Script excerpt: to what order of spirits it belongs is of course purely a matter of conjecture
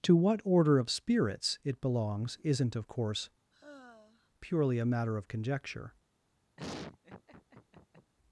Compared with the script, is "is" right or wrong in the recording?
wrong